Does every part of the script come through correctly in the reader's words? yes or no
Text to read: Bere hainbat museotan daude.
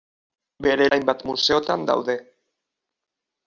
yes